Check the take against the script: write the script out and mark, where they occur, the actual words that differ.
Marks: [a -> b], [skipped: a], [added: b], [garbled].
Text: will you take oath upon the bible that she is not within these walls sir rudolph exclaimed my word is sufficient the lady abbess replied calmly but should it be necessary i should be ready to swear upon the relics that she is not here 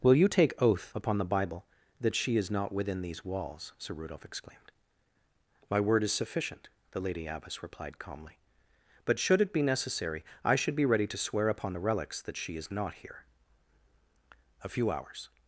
will you take oath upon the bible that she is not within these walls sir rudolph exclaimed my word is sufficient the lady abbess replied calmly but should it be necessary i should be ready to swear upon the relics that she is not here [added: a few hours]